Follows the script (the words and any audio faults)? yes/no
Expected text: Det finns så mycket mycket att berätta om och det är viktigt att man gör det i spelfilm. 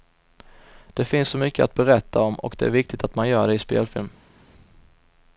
no